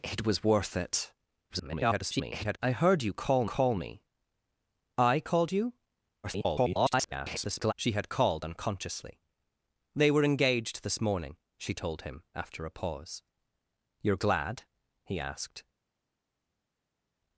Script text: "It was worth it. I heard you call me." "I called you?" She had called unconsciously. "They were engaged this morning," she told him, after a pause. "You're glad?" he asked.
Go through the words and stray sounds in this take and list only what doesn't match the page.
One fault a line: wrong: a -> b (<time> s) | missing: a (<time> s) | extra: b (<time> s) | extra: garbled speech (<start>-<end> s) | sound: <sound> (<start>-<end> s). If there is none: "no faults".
extra: garbled speech (1.5-2.6 s)
extra: call (3.4 s)
extra: garbled speech (6.2-7.7 s)